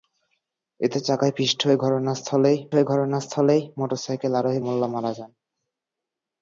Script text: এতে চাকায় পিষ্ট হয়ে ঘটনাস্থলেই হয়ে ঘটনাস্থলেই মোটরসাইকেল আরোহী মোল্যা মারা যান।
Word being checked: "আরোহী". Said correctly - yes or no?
yes